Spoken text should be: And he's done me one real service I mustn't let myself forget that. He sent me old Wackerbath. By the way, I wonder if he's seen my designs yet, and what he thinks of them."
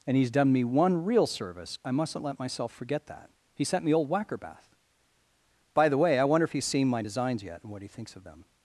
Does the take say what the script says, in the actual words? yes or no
yes